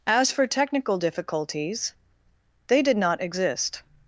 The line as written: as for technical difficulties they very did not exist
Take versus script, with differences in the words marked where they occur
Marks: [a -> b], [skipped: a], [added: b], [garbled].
as for technical difficulties they [skipped: very] did not exist